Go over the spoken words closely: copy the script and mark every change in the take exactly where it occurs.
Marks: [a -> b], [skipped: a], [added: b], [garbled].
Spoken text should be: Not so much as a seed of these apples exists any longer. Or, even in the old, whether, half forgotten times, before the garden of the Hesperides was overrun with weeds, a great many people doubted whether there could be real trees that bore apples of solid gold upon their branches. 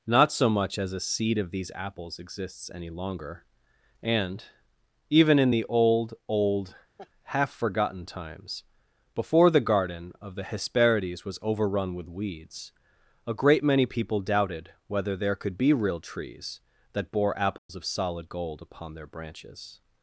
Not so much as a seed of these apples exists any longer. [Or, -> And] even in the old, [whether, -> old] half forgotten times, before the garden of the Hesperides was overrun with weeds, a great many people doubted whether there could be real trees that bore apples of solid gold upon their branches.